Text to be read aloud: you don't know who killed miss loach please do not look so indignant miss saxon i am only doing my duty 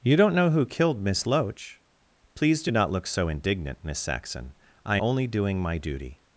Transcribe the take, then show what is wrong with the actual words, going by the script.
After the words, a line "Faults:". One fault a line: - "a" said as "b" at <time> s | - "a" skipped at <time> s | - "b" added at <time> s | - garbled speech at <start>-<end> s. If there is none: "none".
you don't know who killed miss loach please do not look so indignant miss saxon i only doing my duty
Faults:
- "am" skipped at 5.0 s